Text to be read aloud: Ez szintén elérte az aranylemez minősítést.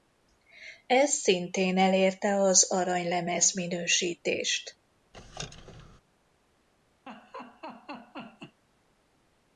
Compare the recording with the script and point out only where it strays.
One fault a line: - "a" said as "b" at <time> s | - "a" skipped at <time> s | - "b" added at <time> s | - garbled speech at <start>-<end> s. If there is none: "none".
none